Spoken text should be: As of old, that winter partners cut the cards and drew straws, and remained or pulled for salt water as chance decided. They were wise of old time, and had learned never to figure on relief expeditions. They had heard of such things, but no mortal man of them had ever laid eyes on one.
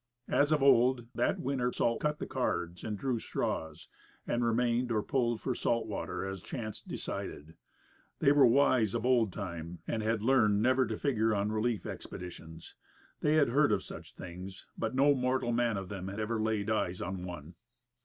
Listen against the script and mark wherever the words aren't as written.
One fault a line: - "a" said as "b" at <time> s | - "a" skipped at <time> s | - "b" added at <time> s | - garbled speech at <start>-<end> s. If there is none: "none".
- "partners" said as "salt" at 1.7 s